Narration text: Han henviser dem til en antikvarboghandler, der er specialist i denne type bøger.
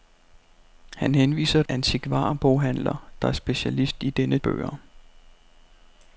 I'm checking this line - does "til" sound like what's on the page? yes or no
no